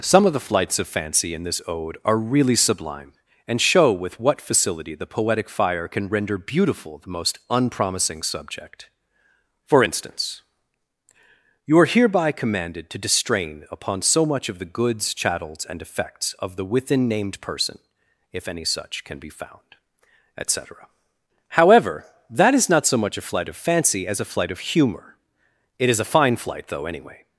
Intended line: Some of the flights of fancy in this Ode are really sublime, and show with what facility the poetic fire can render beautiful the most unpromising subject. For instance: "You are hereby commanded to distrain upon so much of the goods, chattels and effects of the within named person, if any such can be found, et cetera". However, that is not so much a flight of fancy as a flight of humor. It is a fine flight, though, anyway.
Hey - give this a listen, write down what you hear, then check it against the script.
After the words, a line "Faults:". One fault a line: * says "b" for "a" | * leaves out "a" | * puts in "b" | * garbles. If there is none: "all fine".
Some of the flights of fancy in this Ode are really sublime, and show with what facility the poetic fire can render beautiful the most unpromising subject. For instance: "You are hereby commanded to distrain upon so much of the goods, chattels and effects of the within named person, if any such can be found, et cetera". However, that is not so much a flight of fancy as a flight of humor. It is a fine flight, though, anyway.
Faults:
all fine